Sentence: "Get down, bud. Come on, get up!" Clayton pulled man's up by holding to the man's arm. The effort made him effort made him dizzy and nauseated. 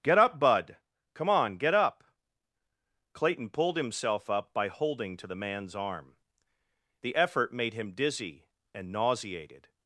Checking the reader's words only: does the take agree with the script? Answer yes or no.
no